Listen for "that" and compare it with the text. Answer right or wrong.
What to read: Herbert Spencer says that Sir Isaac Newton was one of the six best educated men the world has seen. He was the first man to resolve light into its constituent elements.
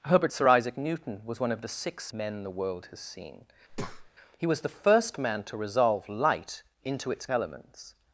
wrong